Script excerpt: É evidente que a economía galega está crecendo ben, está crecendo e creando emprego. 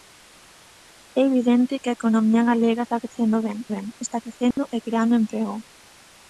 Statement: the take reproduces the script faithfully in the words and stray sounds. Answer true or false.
false